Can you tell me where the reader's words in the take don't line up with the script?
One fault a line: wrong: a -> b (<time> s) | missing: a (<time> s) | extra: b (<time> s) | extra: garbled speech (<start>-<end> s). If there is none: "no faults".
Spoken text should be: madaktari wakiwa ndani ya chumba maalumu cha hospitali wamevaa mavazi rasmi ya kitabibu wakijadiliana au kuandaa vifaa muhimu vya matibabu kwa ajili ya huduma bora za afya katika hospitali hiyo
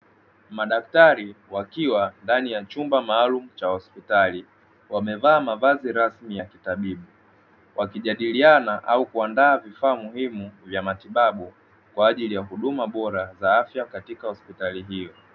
no faults